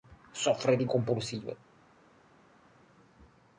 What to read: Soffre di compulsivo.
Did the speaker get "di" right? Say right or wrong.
right